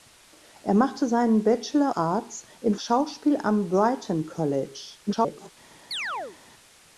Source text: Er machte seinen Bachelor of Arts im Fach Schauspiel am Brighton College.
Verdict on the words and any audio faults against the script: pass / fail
fail